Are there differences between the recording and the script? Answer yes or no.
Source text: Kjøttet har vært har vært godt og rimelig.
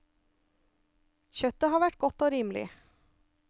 yes